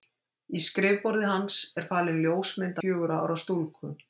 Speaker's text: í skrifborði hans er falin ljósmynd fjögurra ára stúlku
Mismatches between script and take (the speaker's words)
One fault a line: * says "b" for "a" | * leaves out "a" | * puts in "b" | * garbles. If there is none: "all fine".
all fine